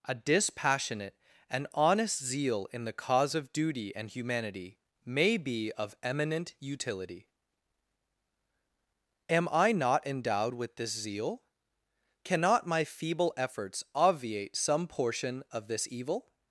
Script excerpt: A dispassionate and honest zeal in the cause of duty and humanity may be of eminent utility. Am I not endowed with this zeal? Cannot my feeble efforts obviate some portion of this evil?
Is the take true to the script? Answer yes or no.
yes